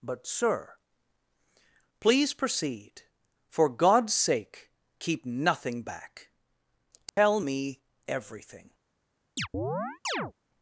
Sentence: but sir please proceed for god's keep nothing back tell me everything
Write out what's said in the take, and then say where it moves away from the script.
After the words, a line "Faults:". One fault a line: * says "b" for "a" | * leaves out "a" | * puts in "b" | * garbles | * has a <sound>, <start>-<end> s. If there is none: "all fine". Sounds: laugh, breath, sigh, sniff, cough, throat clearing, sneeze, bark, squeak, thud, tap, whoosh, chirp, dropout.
but sir please proceed for god's sake keep nothing back tell me everything
Faults:
* puts in "sake"
* has a dropout, 7.1-7.2 s
* has a chirp, 9.4-10.3 s